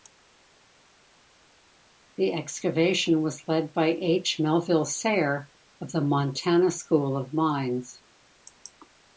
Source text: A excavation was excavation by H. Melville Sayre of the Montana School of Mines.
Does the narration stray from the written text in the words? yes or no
yes